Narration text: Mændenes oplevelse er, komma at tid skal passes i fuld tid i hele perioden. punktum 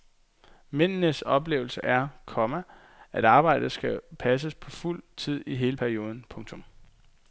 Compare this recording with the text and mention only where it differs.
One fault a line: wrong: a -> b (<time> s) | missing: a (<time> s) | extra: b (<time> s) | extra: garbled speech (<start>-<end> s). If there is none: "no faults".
wrong: tid -> arbejdet (3.2 s)
wrong: i -> på (4.5 s)